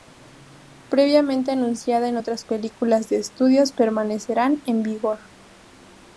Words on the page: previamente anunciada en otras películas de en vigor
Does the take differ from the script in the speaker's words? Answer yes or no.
yes